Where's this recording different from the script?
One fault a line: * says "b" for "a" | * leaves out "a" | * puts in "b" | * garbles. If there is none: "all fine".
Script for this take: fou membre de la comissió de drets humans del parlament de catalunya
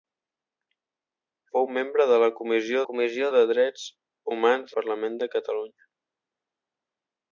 * puts in "comissió"
* leaves out "del"